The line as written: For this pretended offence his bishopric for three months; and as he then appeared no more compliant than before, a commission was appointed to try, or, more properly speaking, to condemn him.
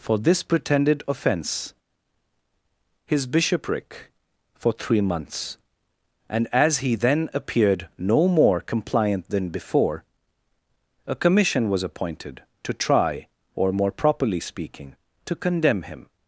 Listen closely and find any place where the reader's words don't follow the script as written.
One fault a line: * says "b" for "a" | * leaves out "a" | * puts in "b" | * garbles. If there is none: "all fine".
all fine